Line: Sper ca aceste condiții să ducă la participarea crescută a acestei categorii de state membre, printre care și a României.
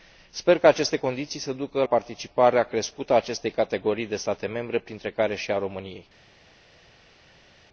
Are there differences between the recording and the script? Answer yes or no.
yes